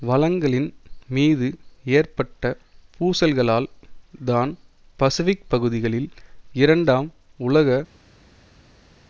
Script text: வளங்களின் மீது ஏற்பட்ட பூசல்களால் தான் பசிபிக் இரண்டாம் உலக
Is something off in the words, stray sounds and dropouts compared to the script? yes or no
yes